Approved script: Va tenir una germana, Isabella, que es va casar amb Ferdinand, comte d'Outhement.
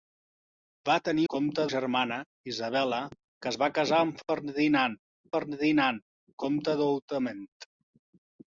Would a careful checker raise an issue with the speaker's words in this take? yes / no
yes